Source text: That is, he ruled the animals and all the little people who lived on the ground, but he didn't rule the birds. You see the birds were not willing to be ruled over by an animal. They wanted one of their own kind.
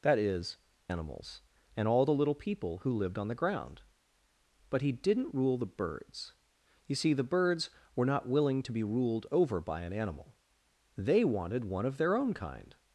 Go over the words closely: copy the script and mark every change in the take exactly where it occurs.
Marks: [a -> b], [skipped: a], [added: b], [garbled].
That is, [skipped: he ruled the] animals and all the little people who lived on the ground, but he didn't rule the birds. You see the birds were not willing to be ruled over by an animal. They wanted one of their own kind.